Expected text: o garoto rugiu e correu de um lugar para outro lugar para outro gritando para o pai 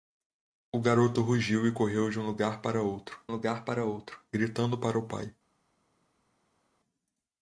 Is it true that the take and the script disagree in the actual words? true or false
false